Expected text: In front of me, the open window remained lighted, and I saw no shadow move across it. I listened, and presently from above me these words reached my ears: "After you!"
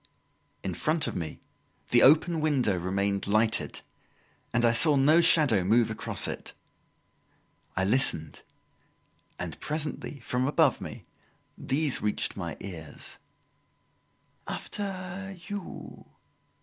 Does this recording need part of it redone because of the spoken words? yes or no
yes